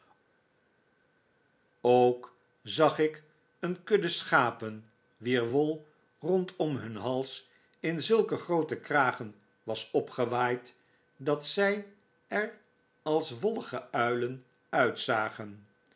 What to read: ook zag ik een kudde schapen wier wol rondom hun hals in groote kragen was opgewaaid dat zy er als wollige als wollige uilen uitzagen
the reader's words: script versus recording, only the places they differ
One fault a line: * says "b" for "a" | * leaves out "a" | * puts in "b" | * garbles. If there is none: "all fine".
* puts in "zulke"
* leaves out "als wollige"